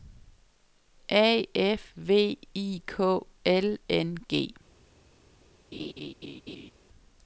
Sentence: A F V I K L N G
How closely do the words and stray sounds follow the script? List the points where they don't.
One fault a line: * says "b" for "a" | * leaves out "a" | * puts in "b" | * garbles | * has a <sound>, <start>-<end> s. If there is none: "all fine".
* has a laugh, 5.7-6.7 s